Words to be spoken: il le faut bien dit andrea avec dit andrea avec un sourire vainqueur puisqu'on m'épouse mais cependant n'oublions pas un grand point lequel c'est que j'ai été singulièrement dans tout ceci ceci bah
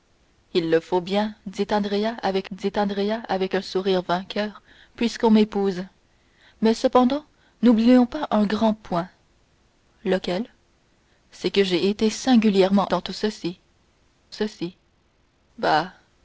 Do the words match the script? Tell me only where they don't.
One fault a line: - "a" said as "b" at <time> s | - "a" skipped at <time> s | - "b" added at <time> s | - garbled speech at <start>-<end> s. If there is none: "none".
none